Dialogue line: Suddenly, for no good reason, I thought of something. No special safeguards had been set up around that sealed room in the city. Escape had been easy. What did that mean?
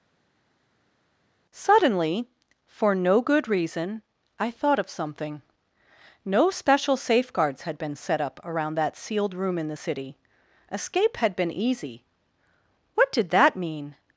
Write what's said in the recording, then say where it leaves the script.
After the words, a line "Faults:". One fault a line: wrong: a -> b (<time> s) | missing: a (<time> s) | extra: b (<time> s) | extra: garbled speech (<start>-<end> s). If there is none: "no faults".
Suddenly, for no good reason, I thought of something. No special safeguards had been set up around that sealed room in the city. Escape had been easy. What did that mean?
Faults:
no faults